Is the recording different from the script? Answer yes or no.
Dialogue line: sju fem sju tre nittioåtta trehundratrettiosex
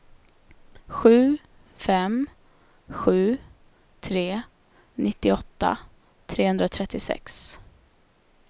no